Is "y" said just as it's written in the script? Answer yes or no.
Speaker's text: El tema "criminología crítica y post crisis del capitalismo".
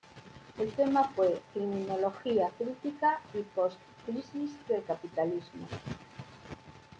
yes